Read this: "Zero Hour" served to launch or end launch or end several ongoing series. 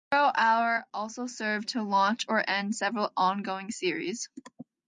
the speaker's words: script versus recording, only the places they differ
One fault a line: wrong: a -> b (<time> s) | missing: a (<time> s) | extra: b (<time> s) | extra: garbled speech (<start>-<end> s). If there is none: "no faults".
extra: also (0.9 s)
missing: launch or end (2.7 s)